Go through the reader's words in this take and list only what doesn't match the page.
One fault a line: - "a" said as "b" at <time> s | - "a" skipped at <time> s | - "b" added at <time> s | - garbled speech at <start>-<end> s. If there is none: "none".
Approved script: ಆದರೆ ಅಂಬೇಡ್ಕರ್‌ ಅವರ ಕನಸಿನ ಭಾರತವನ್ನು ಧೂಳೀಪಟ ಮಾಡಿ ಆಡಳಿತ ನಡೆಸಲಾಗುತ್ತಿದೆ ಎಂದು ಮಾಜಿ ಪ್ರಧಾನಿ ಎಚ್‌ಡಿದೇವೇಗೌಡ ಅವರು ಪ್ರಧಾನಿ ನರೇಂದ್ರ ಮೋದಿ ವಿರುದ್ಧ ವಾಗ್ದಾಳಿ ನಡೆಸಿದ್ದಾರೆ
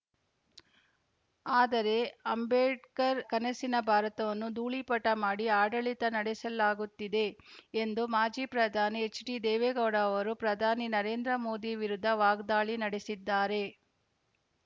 - "ಅವರ" skipped at 3.2 s